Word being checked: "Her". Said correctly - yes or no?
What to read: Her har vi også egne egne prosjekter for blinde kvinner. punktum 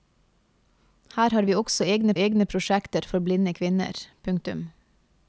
yes